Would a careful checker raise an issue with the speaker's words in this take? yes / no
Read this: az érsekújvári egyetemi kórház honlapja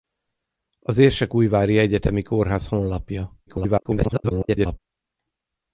yes